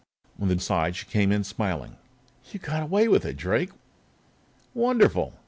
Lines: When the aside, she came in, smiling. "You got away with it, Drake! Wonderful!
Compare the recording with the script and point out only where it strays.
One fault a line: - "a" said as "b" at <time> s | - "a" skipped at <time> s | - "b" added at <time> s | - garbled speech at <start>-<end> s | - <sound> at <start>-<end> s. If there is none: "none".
none